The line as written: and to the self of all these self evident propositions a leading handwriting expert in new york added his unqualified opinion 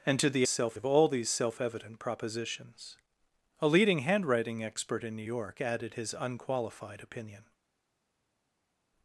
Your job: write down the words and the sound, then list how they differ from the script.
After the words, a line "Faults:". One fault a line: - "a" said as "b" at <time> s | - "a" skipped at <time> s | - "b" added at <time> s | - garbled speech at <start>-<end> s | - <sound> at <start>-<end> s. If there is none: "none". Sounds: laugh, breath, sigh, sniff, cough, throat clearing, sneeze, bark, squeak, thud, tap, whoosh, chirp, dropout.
and to the self of all these self evident propositions a leading handwriting expert in new york added his unqualified opinion
Faults:
none